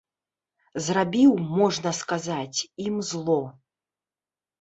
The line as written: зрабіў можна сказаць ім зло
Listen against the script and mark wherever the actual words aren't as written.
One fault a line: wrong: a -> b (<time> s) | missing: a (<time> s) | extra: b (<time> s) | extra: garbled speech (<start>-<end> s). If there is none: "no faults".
no faults